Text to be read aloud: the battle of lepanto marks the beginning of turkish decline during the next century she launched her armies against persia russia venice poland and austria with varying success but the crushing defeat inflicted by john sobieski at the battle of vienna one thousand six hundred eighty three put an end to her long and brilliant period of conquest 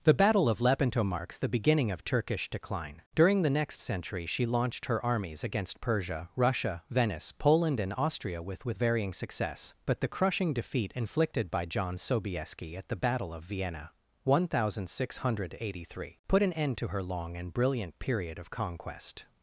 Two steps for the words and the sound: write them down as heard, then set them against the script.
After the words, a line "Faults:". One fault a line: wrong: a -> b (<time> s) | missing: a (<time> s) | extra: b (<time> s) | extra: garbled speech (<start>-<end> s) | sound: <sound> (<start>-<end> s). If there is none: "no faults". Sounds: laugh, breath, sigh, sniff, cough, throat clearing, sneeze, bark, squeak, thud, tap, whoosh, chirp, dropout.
the battle of lepanto marks the beginning of turkish decline during the next century she launched her armies against persia russia venice poland and austria with with varying success but the crushing defeat inflicted by john sobieski at the battle of vienna one thousand six hundred eighty three put an end to her long and brilliant period of conquest
Faults:
extra: with (8.7 s)